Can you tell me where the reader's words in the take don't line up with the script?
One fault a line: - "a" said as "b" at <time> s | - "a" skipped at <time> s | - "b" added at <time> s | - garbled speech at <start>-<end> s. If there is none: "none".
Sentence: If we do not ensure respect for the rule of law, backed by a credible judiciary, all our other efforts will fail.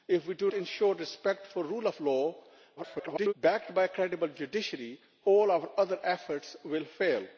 - "not" skipped at 0.5 s
- garbled speech at 2.8-3.3 s